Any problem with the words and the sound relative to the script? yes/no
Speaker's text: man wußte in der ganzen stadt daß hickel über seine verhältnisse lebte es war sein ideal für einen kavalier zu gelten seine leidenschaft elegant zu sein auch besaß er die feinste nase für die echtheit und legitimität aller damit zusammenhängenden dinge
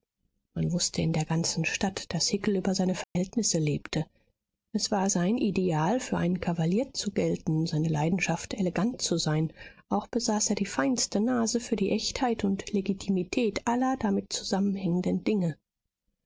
yes